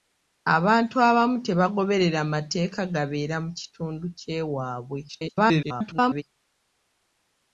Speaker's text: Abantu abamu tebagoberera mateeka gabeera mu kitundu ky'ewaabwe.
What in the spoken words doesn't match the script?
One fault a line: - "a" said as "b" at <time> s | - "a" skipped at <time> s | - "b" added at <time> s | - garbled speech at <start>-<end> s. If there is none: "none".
- garbled speech at 5.1-6.2 s